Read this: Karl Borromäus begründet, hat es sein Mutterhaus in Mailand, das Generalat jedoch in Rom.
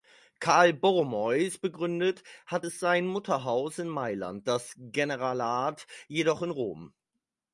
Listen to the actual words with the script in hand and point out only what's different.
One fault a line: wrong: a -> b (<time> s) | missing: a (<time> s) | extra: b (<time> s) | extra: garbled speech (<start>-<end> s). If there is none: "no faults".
no faults